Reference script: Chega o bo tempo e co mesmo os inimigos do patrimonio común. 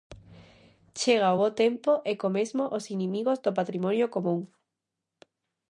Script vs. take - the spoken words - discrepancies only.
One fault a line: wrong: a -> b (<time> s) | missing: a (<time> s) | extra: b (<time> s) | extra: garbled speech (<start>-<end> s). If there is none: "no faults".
no faults